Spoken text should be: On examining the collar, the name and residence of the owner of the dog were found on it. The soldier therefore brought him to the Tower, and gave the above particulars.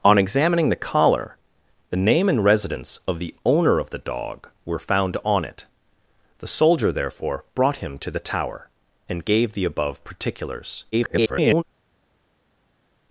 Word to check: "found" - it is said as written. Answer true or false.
true